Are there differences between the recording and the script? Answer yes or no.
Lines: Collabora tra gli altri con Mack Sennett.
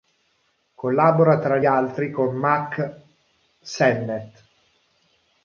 yes